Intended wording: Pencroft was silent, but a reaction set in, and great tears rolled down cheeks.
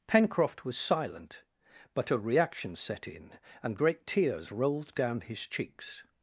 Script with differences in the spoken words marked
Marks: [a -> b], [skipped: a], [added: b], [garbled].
Pencroft was silent, but a reaction set in, and great tears rolled down [added: his] cheeks.